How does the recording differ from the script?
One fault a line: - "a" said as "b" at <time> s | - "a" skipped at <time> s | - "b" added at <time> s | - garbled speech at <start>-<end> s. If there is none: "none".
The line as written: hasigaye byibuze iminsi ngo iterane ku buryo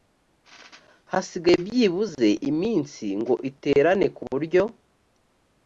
none